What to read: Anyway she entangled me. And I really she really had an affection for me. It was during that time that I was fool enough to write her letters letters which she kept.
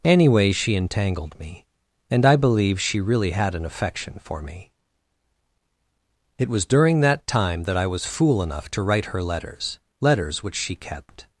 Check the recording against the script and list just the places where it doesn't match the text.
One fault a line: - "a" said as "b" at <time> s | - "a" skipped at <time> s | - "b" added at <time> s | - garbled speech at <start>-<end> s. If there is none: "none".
- "really" said as "believe" at 2.4 s